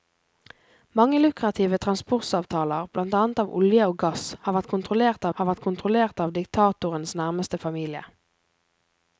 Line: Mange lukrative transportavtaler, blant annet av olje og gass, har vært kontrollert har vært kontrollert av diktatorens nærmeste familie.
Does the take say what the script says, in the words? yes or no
yes